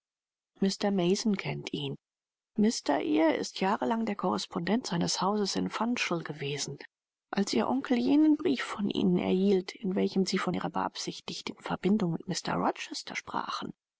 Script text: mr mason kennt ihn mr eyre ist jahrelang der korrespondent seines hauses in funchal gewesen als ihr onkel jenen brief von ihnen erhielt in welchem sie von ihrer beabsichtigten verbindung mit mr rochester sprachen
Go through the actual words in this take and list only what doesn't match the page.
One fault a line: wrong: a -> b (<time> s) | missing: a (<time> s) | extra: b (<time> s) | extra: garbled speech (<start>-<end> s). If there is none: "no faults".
no faults